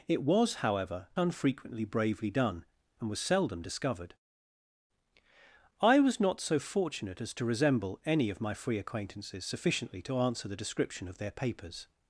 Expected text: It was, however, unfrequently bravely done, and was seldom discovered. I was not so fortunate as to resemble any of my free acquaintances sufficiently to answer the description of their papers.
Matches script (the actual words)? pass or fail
pass